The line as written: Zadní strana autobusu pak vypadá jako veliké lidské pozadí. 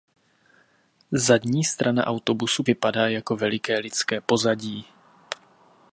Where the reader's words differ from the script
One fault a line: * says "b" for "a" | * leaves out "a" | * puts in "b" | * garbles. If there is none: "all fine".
* leaves out "pak"